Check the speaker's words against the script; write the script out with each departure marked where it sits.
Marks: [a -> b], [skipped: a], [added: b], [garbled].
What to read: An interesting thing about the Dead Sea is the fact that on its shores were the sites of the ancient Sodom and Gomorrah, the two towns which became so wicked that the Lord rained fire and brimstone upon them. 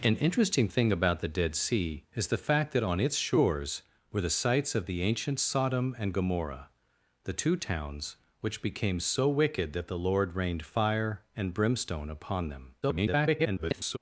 An interesting thing about the Dead Sea is the fact that on its shores were the sites of the ancient Sodom and Gomorrah, the two towns which became so wicked that the Lord rained fire and brimstone upon them. [garbled]